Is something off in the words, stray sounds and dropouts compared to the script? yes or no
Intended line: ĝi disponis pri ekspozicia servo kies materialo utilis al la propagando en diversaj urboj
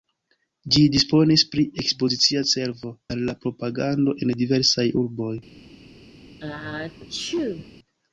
yes